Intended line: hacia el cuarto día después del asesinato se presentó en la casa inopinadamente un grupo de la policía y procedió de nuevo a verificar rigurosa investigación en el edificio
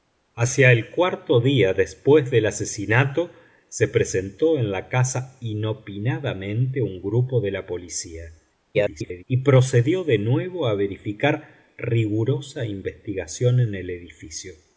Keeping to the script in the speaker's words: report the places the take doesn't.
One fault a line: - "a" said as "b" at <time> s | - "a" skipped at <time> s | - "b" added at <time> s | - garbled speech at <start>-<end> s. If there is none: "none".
- garbled speech at 8.7-9.2 s